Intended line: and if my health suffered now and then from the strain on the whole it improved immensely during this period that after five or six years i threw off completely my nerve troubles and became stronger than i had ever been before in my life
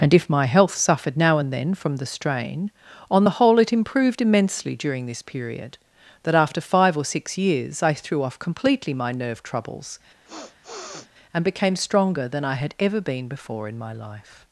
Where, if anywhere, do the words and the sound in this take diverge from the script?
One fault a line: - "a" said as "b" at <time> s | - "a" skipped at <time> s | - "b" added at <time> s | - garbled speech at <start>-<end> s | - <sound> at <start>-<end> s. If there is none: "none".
- sniff at 10.2-11.1 s